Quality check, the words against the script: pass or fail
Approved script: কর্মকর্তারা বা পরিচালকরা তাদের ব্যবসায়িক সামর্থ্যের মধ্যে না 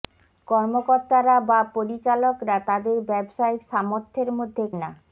pass